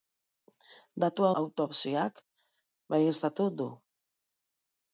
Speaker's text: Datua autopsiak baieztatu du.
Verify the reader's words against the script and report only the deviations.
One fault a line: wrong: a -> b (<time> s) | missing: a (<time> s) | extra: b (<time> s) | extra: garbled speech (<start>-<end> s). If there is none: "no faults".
no faults